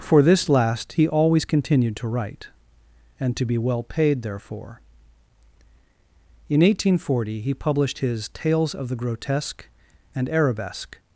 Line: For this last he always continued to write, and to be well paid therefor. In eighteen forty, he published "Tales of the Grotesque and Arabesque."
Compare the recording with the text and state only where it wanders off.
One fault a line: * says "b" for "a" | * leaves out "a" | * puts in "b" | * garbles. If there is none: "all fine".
* puts in "his"